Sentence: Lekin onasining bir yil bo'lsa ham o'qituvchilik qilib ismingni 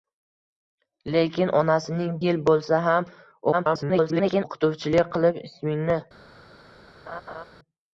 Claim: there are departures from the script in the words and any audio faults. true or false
true